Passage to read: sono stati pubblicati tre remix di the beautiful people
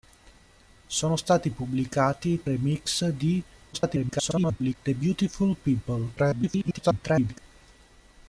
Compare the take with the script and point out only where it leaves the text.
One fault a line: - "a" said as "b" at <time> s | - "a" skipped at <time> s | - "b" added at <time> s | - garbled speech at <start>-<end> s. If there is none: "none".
- "tre" skipped at 2.5 s
- garbled speech at 3.7-4.8 s
- garbled speech at 6.2-7.4 s